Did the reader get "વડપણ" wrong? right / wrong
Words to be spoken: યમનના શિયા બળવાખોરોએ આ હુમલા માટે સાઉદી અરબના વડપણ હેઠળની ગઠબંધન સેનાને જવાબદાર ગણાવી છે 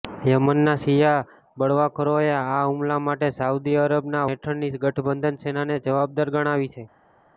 wrong